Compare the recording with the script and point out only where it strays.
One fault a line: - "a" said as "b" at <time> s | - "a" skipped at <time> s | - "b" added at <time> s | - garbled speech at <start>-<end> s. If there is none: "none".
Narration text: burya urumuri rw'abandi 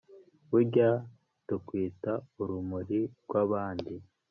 - "tukwita" added at 1.5 s